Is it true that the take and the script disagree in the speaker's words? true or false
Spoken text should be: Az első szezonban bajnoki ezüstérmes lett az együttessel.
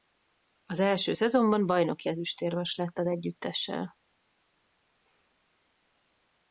false